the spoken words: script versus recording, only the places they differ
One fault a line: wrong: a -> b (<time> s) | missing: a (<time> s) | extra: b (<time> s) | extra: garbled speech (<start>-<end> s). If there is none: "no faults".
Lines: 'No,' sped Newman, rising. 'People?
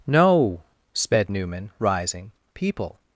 no faults